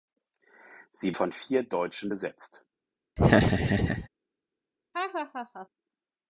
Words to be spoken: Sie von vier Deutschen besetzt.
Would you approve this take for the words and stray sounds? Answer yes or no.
no